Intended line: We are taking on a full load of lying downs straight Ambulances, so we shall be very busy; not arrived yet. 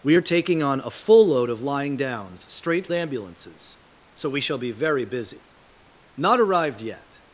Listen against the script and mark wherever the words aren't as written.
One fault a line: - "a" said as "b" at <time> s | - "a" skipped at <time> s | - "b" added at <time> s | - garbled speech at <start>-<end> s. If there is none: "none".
none